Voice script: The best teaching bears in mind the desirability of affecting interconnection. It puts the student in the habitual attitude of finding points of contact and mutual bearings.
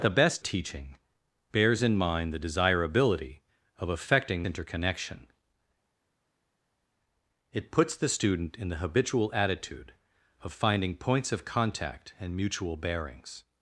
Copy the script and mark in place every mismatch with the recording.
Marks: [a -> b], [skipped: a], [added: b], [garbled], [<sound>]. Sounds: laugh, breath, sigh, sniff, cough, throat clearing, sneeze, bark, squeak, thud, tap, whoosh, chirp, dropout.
The best teaching bears in mind the desirability of affecting interconnection. It puts the student in the habitual attitude of finding points of contact and mutual bearings.